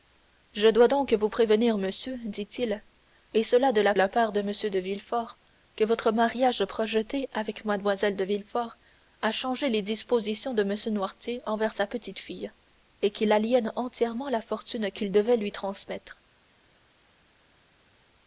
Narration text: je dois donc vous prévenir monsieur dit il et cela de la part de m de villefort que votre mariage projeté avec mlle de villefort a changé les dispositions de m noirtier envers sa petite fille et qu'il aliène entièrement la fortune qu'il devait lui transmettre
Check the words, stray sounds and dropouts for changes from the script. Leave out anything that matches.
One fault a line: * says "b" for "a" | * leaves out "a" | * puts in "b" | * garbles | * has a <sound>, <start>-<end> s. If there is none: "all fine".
* puts in "la"